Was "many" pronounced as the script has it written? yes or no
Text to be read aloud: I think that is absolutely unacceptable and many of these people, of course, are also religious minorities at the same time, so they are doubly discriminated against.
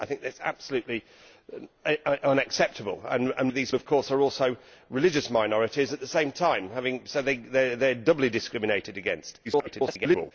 no